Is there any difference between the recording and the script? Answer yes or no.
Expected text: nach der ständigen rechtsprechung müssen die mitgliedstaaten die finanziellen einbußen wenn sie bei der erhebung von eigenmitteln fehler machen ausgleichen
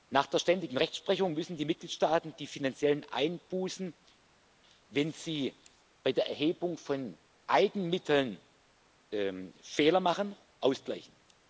no